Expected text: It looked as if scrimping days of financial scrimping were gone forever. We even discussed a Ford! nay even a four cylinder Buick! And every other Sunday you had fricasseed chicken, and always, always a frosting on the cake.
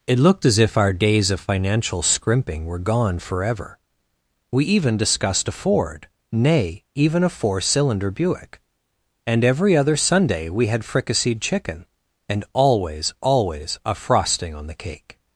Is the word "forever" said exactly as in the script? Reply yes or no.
yes